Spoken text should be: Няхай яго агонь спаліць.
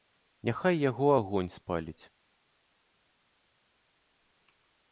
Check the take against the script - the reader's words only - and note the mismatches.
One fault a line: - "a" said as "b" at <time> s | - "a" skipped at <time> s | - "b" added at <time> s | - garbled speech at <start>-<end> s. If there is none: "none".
none